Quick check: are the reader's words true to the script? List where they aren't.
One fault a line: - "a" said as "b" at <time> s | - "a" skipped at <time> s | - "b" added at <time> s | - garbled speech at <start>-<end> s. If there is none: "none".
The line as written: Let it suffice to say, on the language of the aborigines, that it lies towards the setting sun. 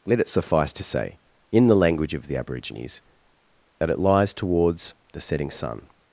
- "on" said as "in" at 1.5 s